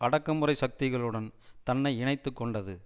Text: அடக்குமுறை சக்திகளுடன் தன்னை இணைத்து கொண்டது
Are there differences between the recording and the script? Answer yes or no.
no